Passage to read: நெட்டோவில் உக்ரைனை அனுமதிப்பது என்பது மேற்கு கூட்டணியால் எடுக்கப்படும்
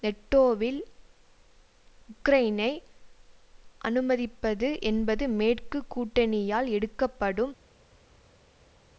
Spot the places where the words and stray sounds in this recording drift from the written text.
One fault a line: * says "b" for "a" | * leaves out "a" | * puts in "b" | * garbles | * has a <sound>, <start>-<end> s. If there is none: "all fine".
all fine